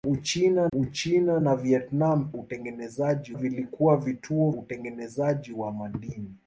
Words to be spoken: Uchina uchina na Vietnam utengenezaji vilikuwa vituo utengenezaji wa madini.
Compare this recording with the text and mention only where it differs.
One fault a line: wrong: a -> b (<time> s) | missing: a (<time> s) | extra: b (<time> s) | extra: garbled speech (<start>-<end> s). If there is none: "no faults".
no faults